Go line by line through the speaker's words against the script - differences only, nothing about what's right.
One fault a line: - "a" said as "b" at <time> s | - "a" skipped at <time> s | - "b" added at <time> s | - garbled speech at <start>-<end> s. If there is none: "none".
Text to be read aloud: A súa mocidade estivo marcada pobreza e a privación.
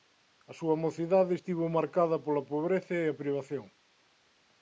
- "pola" added at 2.2 s